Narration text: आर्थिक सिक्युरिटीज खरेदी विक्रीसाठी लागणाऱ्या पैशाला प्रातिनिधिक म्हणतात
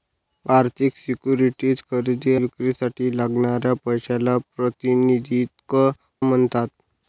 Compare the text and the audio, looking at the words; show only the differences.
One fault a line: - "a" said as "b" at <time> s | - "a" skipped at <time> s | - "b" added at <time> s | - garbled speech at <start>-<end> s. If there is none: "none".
none